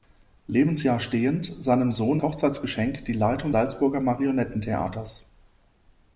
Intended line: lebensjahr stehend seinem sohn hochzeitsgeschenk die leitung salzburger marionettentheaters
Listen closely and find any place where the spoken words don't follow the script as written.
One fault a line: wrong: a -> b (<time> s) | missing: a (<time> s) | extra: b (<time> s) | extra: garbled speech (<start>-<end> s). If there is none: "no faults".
no faults